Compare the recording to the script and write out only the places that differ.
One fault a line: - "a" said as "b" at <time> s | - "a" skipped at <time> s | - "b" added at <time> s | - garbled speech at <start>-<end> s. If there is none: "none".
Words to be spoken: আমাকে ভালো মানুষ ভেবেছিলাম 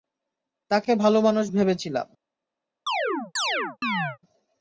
- "আমাকে" said as "তাকে" at 0.7 s